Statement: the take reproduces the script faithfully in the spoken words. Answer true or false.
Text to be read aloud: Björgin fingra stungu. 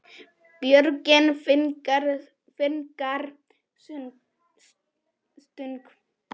true